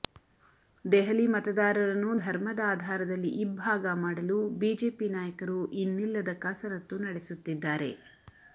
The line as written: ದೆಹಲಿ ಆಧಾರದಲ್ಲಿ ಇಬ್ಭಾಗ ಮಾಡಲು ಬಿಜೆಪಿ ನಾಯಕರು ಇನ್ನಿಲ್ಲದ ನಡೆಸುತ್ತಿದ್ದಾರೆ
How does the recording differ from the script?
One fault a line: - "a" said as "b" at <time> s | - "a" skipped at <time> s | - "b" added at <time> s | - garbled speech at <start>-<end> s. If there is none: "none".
- "ಮತದಾರರನ್ನು ಧರ್ಮದ" added at 1.3 s
- "ಕಸರತ್ತು" added at 6.4 s